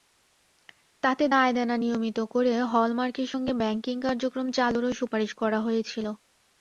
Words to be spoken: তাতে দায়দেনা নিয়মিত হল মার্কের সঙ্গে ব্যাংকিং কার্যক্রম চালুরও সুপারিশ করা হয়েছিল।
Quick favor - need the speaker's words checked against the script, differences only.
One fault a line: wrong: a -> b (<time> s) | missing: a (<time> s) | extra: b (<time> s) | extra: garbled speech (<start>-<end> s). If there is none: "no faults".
extra: করে (2.3 s)